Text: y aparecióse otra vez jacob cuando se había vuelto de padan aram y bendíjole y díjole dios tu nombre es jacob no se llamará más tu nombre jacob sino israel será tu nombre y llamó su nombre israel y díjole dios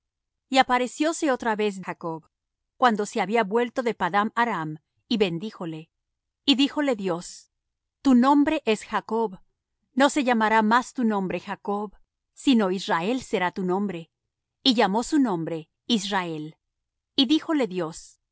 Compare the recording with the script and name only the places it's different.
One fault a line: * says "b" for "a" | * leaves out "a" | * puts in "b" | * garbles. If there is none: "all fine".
all fine